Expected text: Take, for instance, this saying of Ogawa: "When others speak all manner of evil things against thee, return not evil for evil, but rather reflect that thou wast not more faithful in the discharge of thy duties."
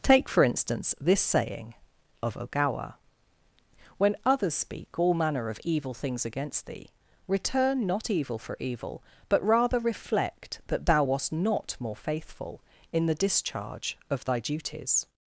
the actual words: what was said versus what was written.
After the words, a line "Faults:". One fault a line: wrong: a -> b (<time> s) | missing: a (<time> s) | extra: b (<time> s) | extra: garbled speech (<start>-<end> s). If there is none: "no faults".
Take, for instance, this saying of Ogawa: "When others speak all manner of evil things against thee, return not evil for evil, but rather reflect that thou wast not more faithful in the discharge of thy duties."
Faults:
no faults